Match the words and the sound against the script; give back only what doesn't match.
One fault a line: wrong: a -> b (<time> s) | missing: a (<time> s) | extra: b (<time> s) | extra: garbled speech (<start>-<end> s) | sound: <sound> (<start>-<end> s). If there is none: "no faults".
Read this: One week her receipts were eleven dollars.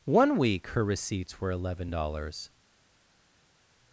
no faults